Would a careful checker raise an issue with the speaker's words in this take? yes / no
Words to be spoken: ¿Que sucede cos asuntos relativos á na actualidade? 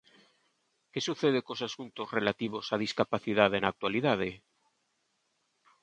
yes